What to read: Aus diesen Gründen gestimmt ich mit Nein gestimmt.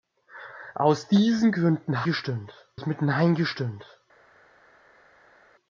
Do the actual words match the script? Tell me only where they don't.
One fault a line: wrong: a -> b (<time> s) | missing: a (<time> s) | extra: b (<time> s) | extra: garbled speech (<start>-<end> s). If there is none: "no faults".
no faults